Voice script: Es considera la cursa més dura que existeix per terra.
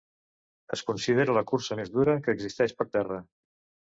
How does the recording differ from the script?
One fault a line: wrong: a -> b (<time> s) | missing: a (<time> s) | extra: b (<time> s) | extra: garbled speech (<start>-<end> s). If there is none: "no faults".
no faults